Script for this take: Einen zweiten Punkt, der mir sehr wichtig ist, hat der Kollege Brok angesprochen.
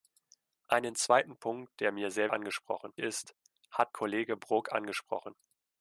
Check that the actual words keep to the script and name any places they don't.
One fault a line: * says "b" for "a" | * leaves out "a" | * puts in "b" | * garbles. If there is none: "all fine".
* says "angesprochen" for "wichtig"
* leaves out "der"